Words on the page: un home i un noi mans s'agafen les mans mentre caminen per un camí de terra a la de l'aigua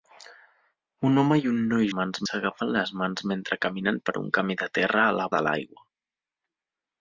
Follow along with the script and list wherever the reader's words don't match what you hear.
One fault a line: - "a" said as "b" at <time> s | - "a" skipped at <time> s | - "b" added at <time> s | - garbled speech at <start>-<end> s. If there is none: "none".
none